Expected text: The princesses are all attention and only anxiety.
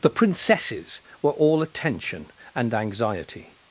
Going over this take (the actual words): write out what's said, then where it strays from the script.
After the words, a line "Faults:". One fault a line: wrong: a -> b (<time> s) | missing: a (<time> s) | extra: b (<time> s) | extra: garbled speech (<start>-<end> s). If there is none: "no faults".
The princesses were all attention and anxiety.
Faults:
wrong: are -> were (1.2 s)
missing: only (2.7 s)